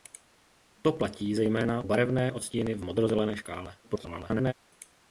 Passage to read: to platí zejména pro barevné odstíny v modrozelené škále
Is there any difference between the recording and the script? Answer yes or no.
yes